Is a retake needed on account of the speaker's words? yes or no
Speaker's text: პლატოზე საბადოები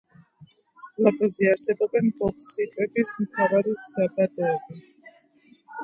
yes